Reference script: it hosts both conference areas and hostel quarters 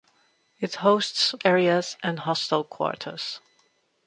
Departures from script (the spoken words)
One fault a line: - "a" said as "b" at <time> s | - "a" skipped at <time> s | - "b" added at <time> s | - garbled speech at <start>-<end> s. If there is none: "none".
- "both conference" skipped at 1.4 s